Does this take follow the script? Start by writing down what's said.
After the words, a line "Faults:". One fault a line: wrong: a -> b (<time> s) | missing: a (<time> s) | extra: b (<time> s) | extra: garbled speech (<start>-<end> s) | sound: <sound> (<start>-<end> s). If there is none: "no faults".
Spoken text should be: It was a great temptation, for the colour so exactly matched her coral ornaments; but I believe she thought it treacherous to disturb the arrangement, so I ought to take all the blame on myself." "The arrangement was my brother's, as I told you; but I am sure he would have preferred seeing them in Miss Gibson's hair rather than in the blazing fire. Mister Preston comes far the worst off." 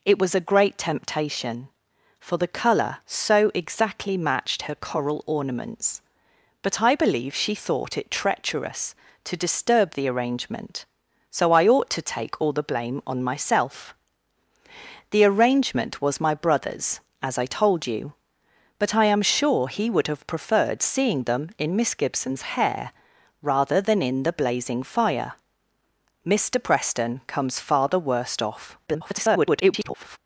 It was a great temptation, for the colour so exactly matched her coral ornaments; but I believe she thought it treacherous to disturb the arrangement, so I ought to take all the blame on myself." "The arrangement was my brother's, as I told you; but I am sure he would have preferred seeing them in Miss Gibson's hair rather than in the blazing fire. Mister Preston comes far the worst off." [garbled]
Faults:
extra: garbled speech (28.9-30.2 s)